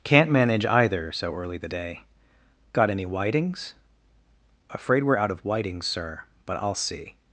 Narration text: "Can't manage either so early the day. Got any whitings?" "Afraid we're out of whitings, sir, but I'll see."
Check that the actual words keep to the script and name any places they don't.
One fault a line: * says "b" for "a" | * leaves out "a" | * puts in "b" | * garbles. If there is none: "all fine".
all fine